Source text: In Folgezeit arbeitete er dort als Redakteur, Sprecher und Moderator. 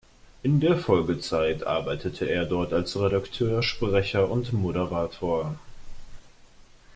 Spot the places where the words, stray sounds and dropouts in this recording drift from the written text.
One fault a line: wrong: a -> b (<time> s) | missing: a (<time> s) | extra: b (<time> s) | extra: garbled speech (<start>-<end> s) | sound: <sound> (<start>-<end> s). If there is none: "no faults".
extra: der (0.6 s)